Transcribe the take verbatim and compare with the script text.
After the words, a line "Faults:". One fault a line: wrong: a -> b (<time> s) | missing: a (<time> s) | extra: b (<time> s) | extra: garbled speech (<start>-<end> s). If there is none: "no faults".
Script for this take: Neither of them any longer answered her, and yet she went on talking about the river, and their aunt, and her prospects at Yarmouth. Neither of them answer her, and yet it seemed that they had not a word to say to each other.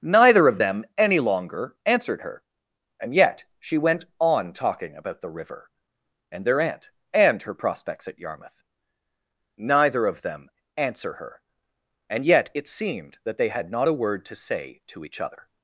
Neither of them any longer answered her, and yet she went on talking about the river, and their aunt, and her prospects at Yarmouth. Neither of them answer her, and yet it seemed that they had not a word to say to each other.
Faults:
no faults